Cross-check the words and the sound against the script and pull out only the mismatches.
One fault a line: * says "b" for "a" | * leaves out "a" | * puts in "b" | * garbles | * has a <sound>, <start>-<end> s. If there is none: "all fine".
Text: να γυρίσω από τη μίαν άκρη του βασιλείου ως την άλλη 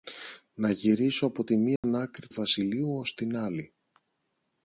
* has a dropout, 1.8-1.8 s
* leaves out "του"